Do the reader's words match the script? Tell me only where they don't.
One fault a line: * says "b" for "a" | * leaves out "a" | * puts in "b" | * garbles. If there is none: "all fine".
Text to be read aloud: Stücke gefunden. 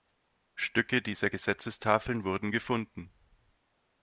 * puts in "dieser Gesetzestafeln wurden"